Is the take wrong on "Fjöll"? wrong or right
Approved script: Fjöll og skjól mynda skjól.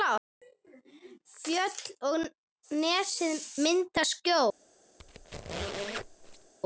right